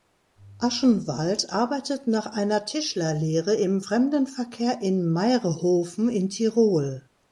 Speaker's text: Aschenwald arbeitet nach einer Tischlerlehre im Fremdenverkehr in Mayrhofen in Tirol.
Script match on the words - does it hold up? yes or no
yes